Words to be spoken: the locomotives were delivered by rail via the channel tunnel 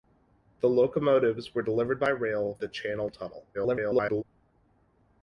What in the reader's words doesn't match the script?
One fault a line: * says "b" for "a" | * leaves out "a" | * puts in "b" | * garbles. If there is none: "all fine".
* leaves out "via"
* garbles